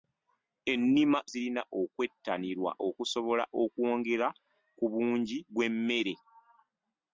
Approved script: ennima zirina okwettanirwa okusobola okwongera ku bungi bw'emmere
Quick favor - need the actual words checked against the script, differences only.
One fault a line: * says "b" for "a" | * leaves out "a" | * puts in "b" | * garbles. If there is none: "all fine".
all fine